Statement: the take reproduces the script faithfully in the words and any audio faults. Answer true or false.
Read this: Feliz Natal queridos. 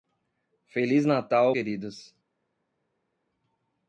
true